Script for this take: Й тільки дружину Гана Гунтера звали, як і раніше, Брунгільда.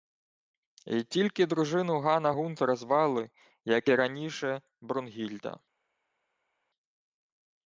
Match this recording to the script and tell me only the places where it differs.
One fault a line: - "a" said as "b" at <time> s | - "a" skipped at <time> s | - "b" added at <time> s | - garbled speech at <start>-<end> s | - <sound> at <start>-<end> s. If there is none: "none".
none